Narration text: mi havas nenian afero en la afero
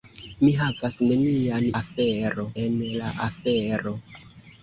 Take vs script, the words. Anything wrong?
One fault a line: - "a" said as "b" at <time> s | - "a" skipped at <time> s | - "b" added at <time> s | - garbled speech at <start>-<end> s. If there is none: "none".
none